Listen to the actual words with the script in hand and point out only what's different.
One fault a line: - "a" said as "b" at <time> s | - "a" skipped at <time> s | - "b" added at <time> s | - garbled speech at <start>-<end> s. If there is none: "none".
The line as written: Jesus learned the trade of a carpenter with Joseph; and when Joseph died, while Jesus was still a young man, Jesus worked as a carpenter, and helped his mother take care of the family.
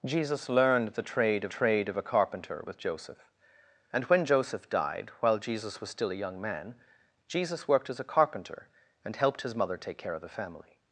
- "trade of" added at 1.5 s